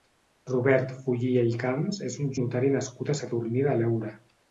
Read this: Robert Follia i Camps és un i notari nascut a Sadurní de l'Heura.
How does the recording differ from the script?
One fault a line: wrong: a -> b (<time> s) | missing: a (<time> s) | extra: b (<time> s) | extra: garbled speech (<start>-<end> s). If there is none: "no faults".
no faults